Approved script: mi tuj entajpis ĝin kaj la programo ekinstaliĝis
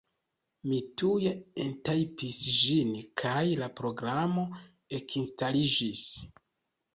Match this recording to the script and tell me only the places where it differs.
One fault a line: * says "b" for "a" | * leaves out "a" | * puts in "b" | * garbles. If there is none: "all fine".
all fine